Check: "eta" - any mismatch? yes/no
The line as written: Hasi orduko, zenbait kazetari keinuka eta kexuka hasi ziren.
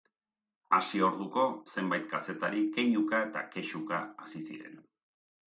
no